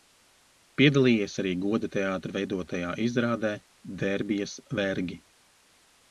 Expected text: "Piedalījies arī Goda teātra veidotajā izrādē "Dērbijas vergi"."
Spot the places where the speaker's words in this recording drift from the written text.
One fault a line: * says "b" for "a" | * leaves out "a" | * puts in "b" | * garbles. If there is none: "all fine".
all fine